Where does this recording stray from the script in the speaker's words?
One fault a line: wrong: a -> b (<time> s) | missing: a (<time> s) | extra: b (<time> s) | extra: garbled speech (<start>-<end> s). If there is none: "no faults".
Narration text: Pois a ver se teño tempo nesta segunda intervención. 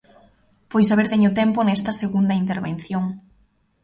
missing: se (1.1 s)